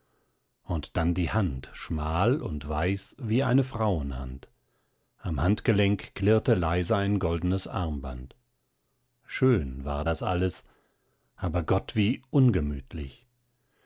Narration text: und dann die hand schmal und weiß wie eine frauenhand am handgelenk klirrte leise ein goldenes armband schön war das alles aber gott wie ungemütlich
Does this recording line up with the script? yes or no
yes